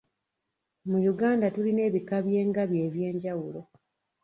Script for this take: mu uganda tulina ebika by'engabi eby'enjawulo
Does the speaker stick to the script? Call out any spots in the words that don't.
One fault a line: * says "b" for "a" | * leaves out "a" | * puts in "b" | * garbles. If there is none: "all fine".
all fine